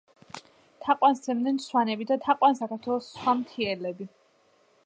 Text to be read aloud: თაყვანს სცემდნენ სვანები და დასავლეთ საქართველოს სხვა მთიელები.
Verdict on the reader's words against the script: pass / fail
fail